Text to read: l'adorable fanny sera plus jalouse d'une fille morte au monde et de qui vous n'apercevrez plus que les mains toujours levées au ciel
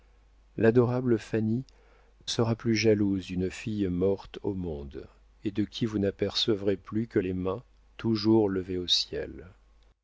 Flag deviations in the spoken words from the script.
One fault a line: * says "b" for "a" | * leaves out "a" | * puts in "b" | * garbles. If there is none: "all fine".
all fine